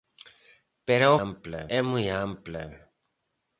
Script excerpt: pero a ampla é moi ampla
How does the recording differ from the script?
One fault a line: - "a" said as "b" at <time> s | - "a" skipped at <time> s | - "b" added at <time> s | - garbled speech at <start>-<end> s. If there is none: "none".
none